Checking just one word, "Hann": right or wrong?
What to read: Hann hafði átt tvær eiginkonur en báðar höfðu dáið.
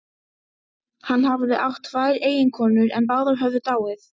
right